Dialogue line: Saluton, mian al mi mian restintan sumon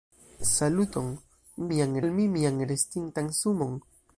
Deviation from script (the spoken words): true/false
false